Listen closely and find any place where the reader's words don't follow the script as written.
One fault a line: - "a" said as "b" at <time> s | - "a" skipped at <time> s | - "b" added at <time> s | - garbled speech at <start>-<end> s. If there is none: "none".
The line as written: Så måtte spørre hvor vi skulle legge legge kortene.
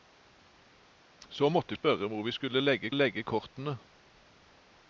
none